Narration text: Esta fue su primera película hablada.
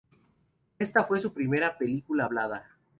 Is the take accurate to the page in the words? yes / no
yes